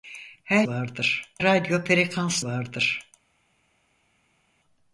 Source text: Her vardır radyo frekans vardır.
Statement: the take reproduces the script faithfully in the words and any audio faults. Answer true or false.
true